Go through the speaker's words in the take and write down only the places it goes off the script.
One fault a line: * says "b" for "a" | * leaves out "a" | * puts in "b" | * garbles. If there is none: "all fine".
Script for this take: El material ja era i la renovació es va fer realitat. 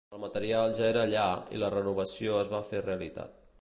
* puts in "allà"